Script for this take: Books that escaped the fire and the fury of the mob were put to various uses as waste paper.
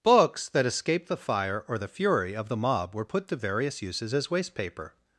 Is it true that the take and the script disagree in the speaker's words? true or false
true